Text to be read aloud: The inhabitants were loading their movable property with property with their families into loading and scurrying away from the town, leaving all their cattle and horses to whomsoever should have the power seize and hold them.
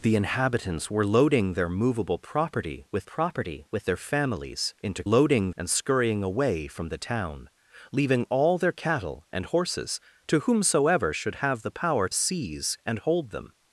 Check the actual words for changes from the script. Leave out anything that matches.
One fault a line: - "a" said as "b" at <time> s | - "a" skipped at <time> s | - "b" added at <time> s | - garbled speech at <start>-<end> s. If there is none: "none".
none